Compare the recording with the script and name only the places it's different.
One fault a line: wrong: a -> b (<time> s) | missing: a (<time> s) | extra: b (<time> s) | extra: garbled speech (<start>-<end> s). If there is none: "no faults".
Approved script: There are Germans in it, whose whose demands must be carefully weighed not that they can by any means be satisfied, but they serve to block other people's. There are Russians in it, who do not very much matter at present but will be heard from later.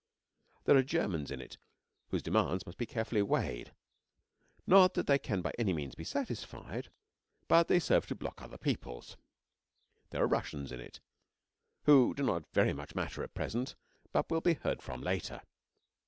missing: whose (2.2 s)